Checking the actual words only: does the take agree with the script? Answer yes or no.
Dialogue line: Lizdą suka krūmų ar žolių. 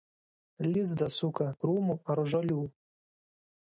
yes